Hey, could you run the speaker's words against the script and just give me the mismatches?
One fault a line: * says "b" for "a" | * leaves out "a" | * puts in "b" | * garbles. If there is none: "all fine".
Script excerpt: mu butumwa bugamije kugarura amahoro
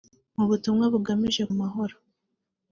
* leaves out "kugarura"